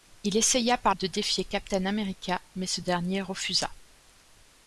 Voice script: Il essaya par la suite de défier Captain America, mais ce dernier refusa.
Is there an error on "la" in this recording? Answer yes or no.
yes